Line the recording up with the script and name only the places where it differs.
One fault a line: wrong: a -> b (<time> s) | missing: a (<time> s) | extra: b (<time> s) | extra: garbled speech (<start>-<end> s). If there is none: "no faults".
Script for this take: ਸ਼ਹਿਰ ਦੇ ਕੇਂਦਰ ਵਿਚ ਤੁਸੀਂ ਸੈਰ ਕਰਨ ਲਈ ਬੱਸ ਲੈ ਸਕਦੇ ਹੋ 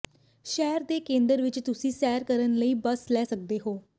no faults